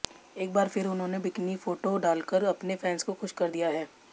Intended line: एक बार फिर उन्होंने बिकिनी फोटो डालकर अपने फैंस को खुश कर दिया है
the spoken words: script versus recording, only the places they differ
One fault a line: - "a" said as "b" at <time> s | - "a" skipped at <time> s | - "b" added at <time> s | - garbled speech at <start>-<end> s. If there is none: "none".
none